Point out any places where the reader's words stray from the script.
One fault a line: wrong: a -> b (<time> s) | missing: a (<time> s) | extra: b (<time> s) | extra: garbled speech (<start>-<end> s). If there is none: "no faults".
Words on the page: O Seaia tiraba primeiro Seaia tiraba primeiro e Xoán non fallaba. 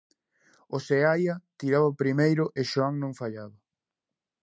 missing: Seaia tiraba primeiro (2.5 s)